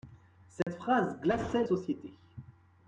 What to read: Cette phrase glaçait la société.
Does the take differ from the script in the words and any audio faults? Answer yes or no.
yes